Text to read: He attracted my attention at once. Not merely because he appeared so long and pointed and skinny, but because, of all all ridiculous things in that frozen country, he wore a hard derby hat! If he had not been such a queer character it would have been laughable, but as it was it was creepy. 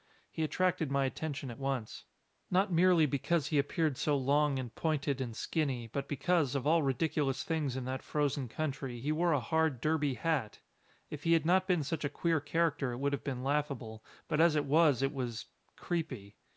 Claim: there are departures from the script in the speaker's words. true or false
true